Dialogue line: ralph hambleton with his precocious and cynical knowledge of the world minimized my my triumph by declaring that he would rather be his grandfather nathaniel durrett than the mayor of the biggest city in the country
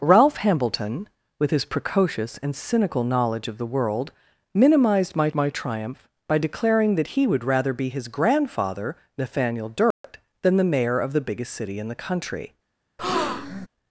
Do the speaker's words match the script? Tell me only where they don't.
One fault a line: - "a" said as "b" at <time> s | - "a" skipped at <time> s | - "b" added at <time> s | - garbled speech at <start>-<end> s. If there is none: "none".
none